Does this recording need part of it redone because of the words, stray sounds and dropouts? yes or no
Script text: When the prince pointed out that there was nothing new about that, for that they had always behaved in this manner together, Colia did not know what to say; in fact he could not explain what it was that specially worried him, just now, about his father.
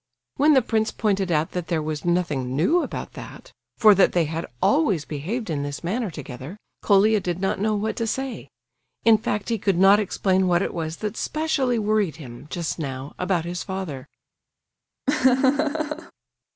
yes